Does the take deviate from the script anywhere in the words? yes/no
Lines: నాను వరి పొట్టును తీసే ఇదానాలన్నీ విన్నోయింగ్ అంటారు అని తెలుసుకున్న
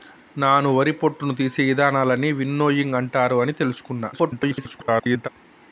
yes